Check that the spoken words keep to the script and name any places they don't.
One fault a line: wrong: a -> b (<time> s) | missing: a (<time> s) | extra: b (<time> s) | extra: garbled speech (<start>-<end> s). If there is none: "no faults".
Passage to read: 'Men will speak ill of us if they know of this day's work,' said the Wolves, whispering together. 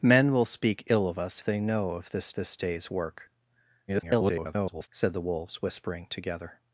missing: if (1.4 s)
extra: this (2.3 s)
extra: garbled speech (3.9-4.9 s)